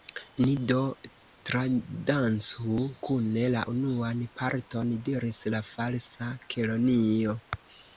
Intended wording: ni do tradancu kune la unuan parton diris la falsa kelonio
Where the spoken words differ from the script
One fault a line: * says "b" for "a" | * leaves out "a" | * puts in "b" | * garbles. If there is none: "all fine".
all fine